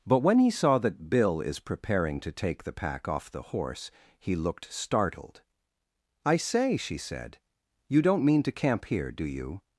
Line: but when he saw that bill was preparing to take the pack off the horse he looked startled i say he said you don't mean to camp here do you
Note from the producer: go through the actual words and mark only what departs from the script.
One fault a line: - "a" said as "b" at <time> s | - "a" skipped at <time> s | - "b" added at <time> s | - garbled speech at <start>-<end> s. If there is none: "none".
- "was" said as "is" at 1.4 s
- "he" said as "she" at 6.8 s